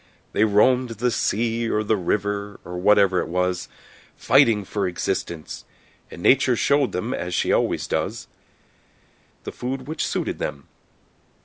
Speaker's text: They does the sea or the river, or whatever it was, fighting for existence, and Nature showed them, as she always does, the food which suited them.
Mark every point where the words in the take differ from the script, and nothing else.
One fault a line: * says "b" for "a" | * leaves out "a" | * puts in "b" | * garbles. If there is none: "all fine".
* says "roamed" for "does"